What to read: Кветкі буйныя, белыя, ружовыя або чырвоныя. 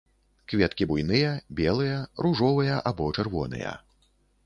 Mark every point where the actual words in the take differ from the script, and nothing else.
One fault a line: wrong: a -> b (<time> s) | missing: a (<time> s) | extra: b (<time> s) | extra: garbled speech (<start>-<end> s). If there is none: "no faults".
no faults